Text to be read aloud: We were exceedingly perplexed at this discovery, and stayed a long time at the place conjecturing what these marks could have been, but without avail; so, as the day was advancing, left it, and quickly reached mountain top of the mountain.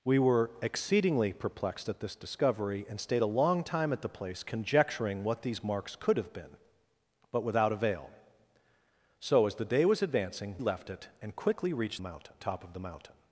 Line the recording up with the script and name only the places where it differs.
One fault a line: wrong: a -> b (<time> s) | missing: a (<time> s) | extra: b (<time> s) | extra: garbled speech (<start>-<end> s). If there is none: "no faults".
no faults